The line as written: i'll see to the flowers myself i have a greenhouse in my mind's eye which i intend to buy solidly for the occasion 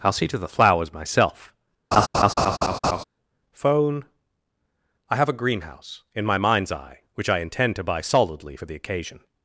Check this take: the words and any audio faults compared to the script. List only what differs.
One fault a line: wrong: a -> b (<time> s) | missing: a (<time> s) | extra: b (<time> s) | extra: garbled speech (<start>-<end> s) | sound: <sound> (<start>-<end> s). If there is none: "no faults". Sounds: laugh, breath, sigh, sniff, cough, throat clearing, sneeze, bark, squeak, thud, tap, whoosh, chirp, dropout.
sound: laugh (1.9-3.0 s)
extra: phone (3.5 s)